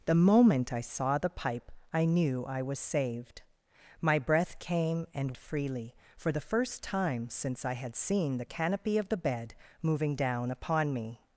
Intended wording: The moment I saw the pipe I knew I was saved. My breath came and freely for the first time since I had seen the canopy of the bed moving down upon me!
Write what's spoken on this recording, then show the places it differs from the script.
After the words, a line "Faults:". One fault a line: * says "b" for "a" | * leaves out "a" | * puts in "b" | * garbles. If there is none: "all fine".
The moment I saw the pipe I knew I was saved. My breath came and freely for the first time since I had seen the canopy of the bed moving down upon me!
Faults:
all fine